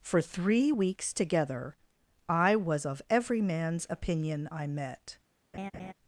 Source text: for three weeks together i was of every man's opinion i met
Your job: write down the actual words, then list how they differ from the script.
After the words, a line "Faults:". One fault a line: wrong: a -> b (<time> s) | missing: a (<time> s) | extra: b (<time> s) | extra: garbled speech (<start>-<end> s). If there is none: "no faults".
for three weeks together i was of every man's opinion i met
Faults:
no faults